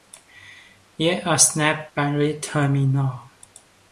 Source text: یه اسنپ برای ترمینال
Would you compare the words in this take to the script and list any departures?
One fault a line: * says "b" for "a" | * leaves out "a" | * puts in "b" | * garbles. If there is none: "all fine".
all fine